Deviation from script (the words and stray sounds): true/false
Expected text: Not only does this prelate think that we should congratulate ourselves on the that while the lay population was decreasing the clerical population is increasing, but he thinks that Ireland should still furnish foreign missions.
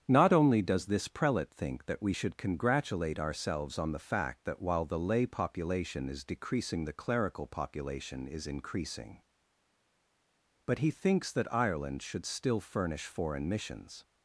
true